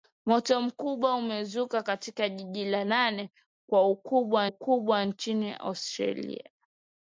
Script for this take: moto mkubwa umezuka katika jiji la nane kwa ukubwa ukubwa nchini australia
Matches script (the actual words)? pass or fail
pass